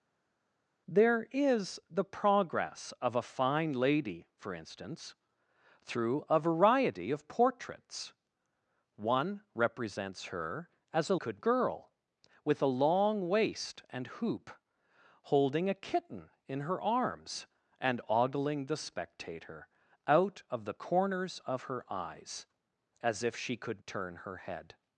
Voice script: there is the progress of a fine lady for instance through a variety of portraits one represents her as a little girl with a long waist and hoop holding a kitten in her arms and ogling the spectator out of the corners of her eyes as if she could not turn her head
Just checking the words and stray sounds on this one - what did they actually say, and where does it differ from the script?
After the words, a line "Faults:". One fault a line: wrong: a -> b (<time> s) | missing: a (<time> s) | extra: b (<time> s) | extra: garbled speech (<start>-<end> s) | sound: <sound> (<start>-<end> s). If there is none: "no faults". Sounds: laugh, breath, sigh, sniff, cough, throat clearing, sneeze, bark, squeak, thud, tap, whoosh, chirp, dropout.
there is the progress of a fine lady for instance through a variety of portraits one represents her as a could girl with a long waist and hoop holding a kitten in her arms and ogling the spectator out of the corners of her eyes as if she could turn her head
Faults:
wrong: little -> could (11.1 s)
missing: not (23.8 s)